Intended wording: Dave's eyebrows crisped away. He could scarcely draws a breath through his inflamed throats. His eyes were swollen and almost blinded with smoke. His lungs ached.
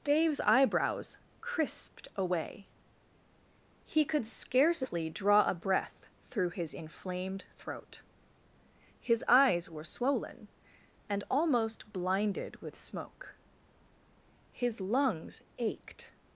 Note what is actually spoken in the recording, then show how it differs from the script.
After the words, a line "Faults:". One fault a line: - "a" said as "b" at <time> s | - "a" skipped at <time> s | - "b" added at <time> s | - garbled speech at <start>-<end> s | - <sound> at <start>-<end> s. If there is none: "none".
Dave's eyebrows crisped away. He could scarcely draw a breath through his inflamed throat. His eyes were swollen and almost blinded with smoke. His lungs ached.
Faults:
- "draws" said as "draw" at 5.1 s
- "throats" said as "throat" at 7.5 s